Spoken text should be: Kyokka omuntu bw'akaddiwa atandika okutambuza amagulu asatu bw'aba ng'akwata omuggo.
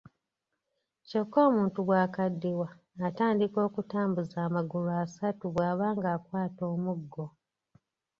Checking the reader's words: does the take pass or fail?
pass